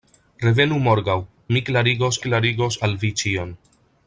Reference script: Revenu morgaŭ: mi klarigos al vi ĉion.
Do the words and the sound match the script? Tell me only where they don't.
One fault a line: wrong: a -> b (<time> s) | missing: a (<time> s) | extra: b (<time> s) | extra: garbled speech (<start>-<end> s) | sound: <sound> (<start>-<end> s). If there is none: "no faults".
extra: klarigos (2.3 s)